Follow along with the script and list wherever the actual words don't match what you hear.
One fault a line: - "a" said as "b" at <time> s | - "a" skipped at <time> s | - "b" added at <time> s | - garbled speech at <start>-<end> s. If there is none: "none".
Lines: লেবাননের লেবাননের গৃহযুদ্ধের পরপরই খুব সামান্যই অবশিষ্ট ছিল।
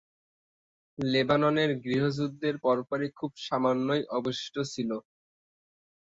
- "লেবাননের" skipped at 1.7 s